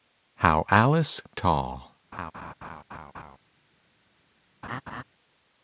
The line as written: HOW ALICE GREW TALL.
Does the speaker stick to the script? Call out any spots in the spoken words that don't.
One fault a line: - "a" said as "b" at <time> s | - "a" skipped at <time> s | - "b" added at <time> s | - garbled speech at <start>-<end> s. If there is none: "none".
- "GREW" skipped at 1.2 s